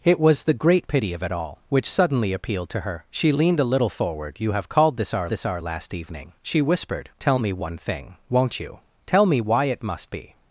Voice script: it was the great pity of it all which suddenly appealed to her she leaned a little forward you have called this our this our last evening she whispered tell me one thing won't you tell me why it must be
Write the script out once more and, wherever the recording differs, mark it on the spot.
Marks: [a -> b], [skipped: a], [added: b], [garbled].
it was the great pity of it all which suddenly appealed to her she leaned a little forward you have called this our this our last evening she whispered tell me one thing won't you tell me why it must be